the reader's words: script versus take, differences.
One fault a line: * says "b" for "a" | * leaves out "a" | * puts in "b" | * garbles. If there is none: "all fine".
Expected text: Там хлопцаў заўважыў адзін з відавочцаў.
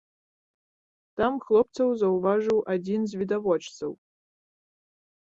all fine